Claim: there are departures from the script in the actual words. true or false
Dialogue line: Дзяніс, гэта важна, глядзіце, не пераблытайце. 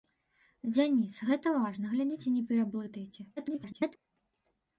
true